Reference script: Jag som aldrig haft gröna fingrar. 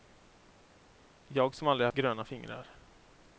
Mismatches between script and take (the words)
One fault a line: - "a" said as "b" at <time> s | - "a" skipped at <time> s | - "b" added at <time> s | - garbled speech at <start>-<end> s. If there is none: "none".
- "haft" skipped at 1.9 s